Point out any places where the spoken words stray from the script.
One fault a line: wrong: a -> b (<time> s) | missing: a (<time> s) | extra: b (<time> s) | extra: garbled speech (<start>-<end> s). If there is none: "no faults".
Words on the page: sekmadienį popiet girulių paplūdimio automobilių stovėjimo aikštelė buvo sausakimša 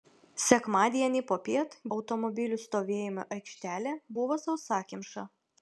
missing: girulių paplūdimio (1.8 s)